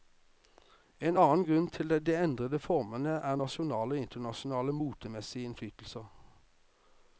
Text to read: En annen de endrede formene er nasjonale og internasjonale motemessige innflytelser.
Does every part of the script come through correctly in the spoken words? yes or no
no